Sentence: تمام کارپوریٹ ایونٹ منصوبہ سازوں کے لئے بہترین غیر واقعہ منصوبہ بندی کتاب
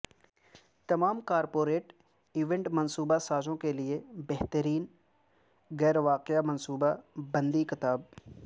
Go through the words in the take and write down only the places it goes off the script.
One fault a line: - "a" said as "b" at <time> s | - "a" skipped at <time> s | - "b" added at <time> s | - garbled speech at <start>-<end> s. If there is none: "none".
none